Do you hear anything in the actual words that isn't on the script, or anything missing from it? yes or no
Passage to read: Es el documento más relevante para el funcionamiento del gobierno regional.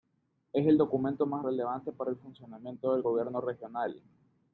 no